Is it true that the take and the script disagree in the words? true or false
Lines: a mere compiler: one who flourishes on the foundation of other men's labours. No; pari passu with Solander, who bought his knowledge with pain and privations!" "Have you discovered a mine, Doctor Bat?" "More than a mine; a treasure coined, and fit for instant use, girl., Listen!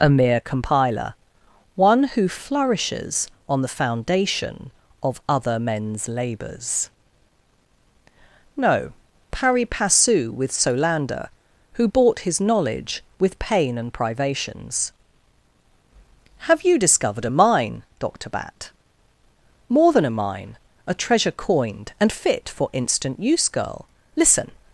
false